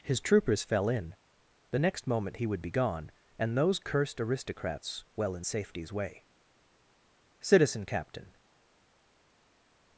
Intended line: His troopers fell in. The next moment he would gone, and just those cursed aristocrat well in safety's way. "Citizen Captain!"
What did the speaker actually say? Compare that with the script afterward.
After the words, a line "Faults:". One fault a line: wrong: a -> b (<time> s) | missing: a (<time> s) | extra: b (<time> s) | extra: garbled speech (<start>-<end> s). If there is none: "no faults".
His troopers fell in. The next moment he would be gone, and those cursed aristocrats well in safety's way. "Citizen Captain!"
Faults:
extra: be (2.6 s)
missing: just (3.6 s)
wrong: aristocrat -> aristocrats (4.2 s)